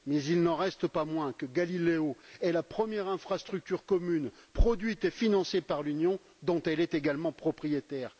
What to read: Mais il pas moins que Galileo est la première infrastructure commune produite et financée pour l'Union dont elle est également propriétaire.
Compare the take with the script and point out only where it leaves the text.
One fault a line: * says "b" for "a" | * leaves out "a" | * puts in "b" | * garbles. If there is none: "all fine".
* puts in "n'en reste"
* says "par" for "pour"